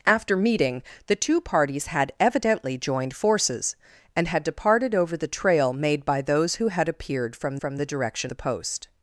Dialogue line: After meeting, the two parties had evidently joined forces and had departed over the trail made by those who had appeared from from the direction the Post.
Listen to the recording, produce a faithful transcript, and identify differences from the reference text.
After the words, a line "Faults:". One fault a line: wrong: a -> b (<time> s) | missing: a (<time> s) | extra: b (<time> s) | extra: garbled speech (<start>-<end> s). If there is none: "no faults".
After meeting, the two parties had evidently joined forces and had departed over the trail made by those who had appeared from from the direction the Post.
Faults:
no faults